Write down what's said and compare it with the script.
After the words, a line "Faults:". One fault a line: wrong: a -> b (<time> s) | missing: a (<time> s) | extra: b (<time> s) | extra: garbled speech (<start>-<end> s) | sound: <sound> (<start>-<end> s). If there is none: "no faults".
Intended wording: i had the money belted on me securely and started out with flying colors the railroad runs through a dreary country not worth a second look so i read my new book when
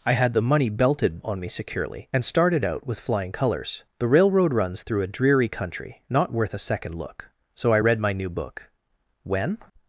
i had the money belted on me securely and started out with flying colors the railroad runs through a dreary country not worth a second look so i read my new book when
Faults:
no faults